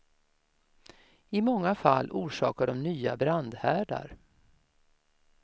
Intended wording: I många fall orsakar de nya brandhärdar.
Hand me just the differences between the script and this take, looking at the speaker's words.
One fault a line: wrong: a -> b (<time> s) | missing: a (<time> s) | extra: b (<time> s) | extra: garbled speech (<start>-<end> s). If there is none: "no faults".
no faults